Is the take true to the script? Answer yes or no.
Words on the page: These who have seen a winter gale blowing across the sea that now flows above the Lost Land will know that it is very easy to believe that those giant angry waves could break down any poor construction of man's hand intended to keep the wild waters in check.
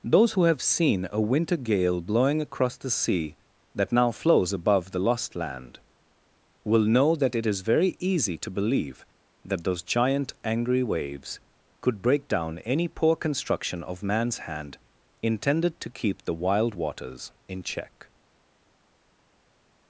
no